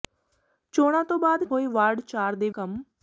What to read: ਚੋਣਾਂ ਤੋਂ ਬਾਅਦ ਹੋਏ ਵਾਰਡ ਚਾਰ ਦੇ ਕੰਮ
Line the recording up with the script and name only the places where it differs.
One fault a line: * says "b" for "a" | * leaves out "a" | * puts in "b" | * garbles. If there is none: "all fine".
all fine